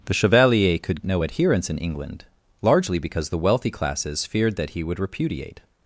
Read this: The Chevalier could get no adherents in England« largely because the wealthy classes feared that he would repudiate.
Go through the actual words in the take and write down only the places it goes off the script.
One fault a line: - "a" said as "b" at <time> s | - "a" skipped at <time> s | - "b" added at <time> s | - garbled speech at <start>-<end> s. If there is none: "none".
- "get" skipped at 1.0 s